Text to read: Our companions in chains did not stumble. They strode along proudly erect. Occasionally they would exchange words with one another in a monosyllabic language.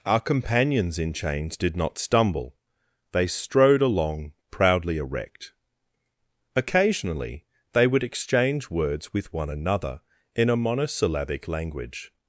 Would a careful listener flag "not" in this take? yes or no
no